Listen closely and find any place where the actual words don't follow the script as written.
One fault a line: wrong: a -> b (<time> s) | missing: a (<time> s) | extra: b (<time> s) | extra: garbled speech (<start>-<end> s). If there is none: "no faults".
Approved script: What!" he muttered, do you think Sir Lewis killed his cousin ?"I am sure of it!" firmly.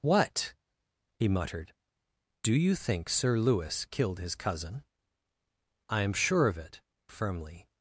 no faults